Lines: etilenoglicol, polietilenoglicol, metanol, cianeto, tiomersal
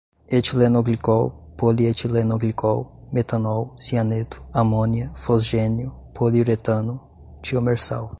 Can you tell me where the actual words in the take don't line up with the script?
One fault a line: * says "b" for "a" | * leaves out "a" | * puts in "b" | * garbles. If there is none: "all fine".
* puts in "amônia fosgênio poliuretano"